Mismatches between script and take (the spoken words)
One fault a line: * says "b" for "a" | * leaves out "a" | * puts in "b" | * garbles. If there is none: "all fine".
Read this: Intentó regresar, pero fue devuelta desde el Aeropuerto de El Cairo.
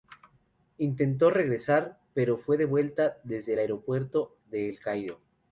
all fine